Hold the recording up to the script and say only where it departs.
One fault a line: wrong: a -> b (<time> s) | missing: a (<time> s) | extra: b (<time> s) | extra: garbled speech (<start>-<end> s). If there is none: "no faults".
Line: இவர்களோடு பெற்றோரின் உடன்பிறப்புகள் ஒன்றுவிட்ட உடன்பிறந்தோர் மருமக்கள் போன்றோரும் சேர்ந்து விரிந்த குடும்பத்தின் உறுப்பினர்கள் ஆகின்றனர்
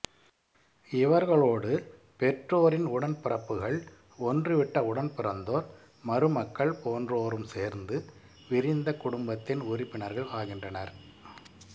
no faults